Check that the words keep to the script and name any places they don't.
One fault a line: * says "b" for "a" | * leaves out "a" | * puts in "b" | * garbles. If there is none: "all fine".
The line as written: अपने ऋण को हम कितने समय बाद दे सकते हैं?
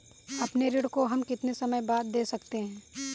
all fine